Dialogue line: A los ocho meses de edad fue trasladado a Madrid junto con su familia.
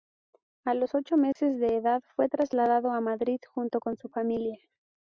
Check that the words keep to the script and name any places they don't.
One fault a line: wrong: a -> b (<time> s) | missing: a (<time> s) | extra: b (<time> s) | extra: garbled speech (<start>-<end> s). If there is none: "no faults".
no faults